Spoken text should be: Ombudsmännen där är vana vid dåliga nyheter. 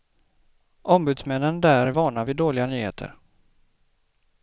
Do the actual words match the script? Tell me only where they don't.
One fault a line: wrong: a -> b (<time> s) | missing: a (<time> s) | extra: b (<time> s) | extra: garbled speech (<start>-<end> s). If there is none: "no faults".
no faults